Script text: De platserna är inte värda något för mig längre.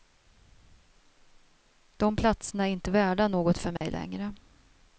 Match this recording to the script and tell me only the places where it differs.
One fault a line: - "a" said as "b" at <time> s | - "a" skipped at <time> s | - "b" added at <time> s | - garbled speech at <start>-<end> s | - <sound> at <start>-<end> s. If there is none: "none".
- dropout at 3.8-3.8 s